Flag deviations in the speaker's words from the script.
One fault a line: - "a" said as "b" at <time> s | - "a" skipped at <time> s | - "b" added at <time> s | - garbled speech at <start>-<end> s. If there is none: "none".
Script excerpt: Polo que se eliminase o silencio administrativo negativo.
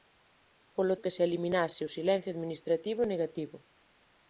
none